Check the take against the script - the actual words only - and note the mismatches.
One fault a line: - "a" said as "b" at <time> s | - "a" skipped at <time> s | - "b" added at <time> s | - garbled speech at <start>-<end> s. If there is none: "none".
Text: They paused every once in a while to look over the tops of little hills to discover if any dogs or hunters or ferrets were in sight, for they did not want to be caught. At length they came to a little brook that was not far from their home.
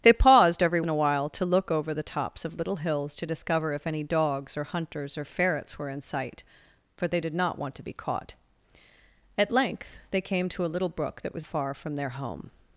- "once" skipped at 0.8 s
- "not" skipped at 11.5 s